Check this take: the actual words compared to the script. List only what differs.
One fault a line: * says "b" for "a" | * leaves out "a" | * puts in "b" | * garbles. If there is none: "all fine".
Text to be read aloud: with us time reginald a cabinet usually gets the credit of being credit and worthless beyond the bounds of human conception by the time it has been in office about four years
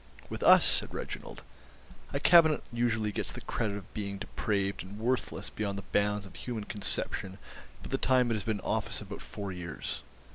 * says "said" for "time"
* says "depraved" for "credit"